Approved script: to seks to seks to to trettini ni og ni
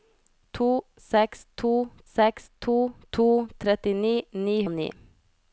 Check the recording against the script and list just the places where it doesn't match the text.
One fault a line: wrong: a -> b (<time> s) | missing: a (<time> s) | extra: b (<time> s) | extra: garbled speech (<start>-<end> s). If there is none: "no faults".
no faults